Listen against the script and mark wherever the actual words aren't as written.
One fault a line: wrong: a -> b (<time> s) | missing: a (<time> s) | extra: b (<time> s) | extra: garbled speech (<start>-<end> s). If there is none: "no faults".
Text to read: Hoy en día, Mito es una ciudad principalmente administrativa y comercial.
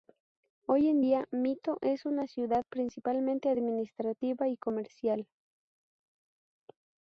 no faults